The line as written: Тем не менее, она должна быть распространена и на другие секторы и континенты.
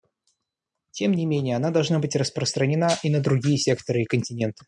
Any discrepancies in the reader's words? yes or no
no